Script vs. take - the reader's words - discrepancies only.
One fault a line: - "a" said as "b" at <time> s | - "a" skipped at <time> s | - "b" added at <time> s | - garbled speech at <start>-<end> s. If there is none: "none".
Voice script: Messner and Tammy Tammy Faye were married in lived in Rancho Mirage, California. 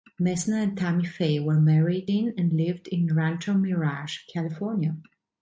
- "Tammy" skipped at 1.1 s
- "and" added at 2.4 s